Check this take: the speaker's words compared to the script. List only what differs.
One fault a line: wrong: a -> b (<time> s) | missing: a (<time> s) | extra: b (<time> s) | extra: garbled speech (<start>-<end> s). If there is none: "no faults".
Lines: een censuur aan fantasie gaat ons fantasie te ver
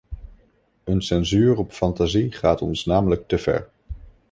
wrong: aan -> op (1.6 s)
wrong: fantasie -> namelijk (2.9 s)